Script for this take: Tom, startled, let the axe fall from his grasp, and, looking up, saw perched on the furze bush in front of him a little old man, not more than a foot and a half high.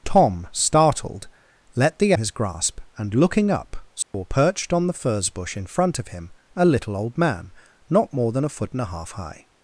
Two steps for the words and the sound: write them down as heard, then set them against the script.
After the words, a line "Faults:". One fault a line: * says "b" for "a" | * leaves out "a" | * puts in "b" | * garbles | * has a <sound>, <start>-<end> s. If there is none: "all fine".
Tom, startled, let the his grasp, and, looking up, saw perched on the furze bush in front of him a little old man, not more than a foot and a half high.
Faults:
* leaves out "axe fall from"
* has a dropout, 4.0-4.1 s